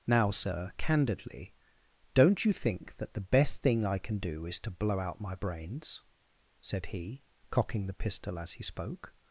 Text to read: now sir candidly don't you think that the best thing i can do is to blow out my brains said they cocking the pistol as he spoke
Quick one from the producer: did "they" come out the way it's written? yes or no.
no